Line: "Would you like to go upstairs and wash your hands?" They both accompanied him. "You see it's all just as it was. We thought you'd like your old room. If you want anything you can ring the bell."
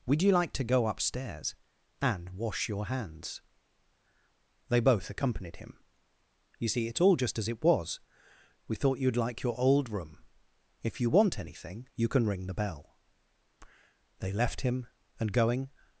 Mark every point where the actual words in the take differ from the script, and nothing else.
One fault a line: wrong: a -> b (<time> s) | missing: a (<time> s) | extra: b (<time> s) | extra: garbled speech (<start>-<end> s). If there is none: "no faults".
extra: They left him and going (14.2 s)